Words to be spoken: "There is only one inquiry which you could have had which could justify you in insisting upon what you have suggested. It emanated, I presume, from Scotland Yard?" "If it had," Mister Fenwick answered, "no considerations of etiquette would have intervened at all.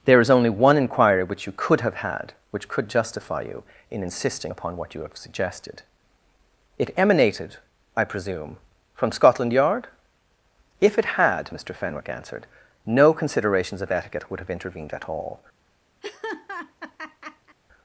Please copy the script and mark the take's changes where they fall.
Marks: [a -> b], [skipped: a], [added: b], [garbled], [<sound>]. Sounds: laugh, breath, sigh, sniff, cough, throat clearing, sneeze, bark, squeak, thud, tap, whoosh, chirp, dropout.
"There is only one inquiry which you could have had which could justify you in insisting upon what you have suggested. It emanated, I presume, from Scotland Yard?" "If it had," Mister Fenwick answered, "no considerations of etiquette would have intervened at all. [laugh]